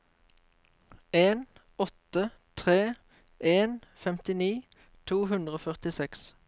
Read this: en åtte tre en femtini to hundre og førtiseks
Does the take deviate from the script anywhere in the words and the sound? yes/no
no